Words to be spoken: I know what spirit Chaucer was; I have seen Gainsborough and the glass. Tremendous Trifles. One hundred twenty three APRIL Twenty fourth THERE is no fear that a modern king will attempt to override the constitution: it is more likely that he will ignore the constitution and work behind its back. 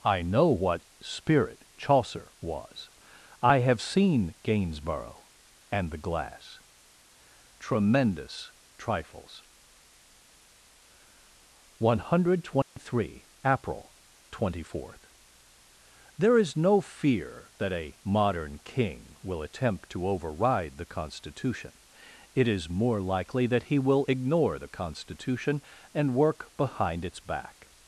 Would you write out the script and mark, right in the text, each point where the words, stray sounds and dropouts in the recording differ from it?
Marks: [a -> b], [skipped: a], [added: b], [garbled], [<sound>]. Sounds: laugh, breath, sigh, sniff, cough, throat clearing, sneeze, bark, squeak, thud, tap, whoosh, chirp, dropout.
I know what spirit Chaucer was; I have seen Gainsborough and the glass. Tremendous Trifles. One hundred twenty [dropout] three APRIL Twenty fourth THERE is no fear that a modern king will attempt to override the constitution: it is more likely that he will ignore the constitution and work behind its back.